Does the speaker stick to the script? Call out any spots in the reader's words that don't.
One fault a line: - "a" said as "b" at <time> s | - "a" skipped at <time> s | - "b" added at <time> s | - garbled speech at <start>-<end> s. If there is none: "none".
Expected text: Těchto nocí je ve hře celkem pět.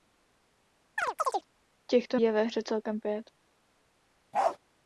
- "nocí" skipped at 2.2 s